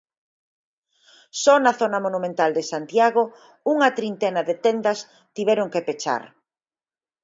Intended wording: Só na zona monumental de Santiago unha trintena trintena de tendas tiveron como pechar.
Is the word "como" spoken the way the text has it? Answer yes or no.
no